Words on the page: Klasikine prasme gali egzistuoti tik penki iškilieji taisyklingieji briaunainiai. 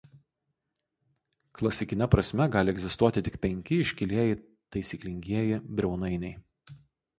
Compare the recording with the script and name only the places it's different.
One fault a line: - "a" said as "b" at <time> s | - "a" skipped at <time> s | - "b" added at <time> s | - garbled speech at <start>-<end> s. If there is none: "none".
none